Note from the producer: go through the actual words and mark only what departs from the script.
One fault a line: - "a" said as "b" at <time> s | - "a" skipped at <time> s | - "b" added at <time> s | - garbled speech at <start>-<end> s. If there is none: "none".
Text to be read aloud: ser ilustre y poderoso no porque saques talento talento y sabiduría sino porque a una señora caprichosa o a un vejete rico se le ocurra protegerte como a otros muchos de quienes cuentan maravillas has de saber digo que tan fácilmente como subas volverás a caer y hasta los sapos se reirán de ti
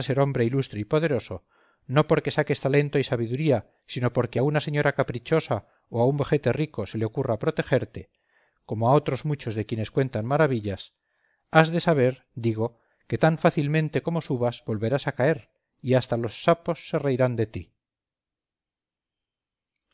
- "hombre" added at 0.2 s
- "talento" skipped at 3.0 s